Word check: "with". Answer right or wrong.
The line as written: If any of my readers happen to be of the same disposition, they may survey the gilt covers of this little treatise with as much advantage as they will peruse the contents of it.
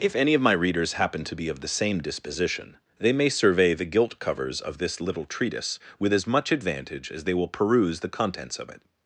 right